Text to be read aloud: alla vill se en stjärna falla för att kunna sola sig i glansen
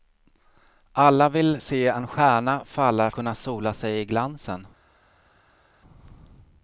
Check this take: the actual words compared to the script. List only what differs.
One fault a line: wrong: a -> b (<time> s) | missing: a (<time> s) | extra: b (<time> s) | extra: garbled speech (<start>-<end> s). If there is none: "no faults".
missing: för att (3.1 s)